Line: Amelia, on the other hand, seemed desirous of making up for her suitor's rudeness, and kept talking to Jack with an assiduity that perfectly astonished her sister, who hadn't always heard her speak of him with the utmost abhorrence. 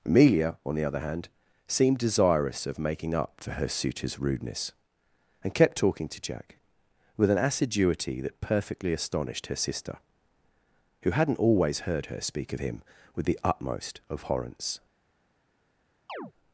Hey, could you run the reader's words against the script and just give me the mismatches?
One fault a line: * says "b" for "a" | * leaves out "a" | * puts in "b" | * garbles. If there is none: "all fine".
all fine